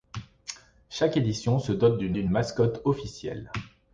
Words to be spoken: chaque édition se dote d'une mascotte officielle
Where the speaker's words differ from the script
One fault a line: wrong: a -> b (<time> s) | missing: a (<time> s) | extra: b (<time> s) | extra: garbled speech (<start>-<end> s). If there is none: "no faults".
extra: d'une (2.1 s)